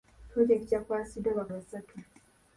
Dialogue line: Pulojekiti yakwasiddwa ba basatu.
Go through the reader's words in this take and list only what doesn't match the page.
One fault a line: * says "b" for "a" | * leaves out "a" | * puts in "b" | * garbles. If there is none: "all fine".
all fine